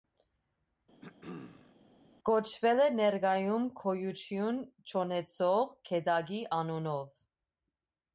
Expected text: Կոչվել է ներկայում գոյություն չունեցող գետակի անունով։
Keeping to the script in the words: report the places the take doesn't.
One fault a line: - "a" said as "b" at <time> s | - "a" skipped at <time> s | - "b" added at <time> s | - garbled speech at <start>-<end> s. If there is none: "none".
none